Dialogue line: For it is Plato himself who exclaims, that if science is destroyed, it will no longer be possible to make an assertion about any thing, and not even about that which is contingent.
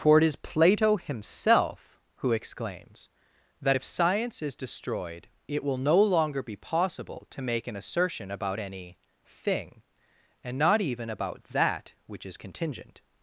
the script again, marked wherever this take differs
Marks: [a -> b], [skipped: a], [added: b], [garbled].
For it is Plato himself who exclaims, that if science is destroyed, it will no longer be possible to make an assertion about any thing, and not even about that which is contingent.